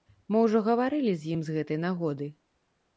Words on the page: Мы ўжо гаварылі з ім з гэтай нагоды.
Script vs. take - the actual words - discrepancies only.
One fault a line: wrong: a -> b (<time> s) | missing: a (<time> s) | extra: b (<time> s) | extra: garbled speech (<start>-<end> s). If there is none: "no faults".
no faults